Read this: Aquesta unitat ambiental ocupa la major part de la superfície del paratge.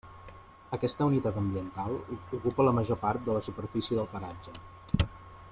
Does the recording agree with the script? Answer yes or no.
yes